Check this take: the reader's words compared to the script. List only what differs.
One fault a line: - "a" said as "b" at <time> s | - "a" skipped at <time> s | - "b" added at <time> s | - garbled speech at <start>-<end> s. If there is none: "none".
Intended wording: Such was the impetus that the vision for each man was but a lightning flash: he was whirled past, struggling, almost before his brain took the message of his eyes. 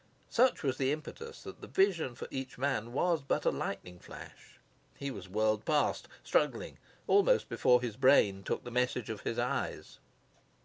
none